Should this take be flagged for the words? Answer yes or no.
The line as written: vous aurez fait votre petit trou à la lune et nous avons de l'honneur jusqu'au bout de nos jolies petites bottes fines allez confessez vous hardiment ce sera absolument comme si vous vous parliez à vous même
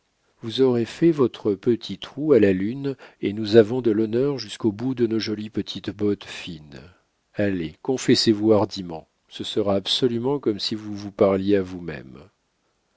no